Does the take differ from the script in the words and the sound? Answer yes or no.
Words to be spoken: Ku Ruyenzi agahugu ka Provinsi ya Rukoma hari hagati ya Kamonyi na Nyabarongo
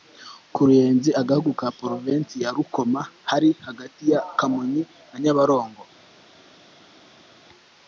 no